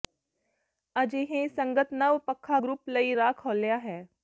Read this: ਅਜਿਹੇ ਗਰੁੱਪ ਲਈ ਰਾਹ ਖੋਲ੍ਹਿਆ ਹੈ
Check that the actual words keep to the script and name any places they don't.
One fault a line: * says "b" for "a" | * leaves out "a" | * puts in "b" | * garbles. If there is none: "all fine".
* puts in "ਸੰਗਤ ਨਵ ਪੱਖਾ"